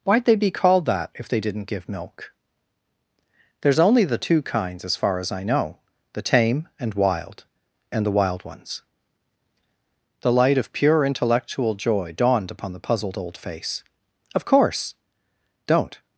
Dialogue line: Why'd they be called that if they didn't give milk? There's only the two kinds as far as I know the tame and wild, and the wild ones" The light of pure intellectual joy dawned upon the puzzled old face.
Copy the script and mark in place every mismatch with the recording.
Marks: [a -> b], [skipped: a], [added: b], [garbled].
Why'd they be called that if they didn't give milk? There's only the two kinds as far as I know the tame and wild, and the wild ones" The light of pure intellectual joy dawned upon the puzzled old face. [added: Of course Don't]